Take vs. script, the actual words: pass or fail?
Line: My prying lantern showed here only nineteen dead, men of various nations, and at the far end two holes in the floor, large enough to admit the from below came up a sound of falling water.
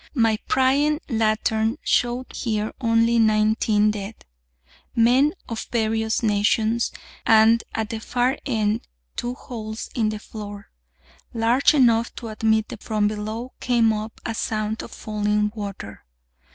pass